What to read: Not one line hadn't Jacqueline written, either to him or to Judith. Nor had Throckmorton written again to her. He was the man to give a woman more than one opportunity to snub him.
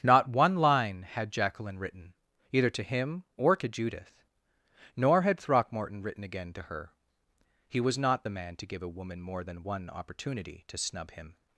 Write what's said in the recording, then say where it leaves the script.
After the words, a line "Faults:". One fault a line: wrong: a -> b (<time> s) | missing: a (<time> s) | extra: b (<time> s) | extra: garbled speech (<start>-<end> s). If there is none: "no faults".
Not one line had Jacqueline written, either to him or to Judith. Nor had Throckmorton written again to her. He was not the man to give a woman more than one opportunity to snub him.
Faults:
wrong: hadn't -> had (1.0 s)
extra: not (8.0 s)